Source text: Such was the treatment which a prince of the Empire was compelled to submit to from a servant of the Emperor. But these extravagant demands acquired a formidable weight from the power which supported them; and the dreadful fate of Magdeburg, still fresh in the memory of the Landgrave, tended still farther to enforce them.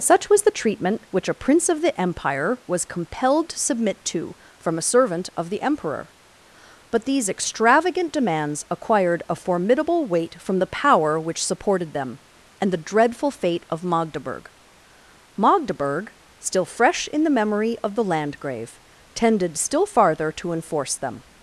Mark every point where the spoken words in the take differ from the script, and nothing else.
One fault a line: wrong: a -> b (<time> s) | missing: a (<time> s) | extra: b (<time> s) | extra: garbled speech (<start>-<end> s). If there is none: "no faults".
extra: Magdeburg (15.4 s)